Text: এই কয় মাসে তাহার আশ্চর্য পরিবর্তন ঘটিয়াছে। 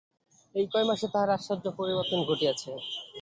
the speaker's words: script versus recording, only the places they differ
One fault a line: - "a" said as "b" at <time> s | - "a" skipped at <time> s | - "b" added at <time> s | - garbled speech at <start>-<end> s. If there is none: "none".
none